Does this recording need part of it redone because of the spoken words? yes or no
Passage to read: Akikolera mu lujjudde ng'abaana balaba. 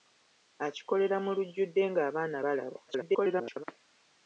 yes